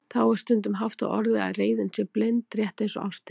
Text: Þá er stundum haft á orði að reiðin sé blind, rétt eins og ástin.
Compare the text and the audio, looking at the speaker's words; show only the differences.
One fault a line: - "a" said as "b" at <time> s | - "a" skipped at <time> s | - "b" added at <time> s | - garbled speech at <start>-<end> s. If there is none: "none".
none